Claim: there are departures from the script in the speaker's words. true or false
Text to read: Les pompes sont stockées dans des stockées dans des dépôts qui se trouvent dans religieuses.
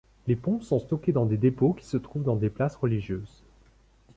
true